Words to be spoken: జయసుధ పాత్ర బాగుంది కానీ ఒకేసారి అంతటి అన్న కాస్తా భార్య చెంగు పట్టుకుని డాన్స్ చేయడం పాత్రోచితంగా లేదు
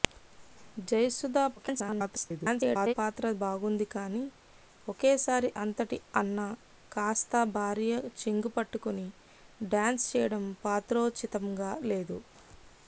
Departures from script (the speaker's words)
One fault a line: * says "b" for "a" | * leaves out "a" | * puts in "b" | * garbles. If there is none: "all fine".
* garbles